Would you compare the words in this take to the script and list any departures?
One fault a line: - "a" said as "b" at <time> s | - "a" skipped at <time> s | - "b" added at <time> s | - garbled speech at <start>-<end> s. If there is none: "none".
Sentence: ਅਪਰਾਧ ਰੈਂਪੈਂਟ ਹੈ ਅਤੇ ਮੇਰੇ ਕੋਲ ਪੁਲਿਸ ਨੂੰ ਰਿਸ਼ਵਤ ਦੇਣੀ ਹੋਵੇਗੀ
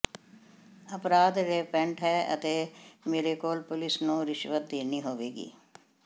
none